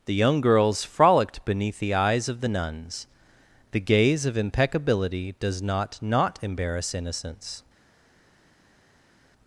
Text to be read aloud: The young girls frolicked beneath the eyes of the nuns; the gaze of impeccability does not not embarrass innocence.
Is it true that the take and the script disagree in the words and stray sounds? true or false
false